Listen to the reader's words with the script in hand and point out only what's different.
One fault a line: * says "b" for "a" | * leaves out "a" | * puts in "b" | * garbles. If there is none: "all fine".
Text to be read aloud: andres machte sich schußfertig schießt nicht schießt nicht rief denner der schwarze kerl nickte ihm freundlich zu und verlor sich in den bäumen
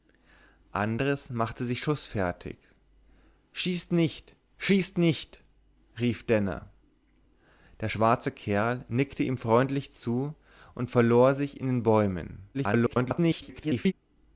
* garbles